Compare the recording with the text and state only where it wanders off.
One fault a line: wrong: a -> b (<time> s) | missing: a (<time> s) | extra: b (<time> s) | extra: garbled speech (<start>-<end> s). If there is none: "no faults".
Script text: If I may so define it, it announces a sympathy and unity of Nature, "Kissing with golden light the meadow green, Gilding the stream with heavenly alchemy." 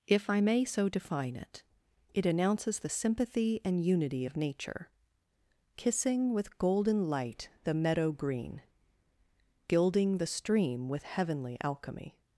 wrong: a -> the (2.8 s)